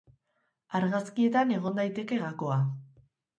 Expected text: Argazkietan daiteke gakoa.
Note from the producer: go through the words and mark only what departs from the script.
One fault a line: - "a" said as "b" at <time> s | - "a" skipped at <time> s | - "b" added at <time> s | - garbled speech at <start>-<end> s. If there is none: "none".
- "egon" added at 1.6 s